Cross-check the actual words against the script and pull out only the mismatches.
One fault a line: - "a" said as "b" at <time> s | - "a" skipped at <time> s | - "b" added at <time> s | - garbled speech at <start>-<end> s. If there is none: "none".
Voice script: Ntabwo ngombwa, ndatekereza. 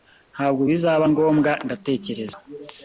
- "bizaba" added at 0.7 s